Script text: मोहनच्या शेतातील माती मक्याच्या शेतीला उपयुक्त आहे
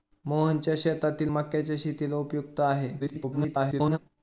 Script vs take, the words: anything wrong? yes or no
yes